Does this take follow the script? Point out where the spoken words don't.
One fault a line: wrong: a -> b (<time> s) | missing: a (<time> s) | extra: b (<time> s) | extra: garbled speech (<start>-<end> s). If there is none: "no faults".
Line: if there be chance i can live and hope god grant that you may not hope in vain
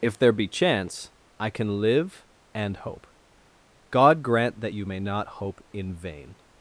no faults